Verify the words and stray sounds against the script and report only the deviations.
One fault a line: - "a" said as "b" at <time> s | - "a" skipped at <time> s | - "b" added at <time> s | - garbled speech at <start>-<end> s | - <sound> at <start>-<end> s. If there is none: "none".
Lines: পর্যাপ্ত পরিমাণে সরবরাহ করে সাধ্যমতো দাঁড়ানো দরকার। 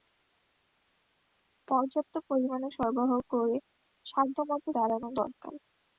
none